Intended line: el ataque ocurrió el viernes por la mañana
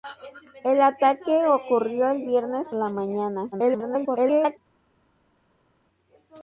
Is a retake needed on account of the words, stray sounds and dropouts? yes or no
yes